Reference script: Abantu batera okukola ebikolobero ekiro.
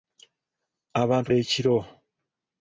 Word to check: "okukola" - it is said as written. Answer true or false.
false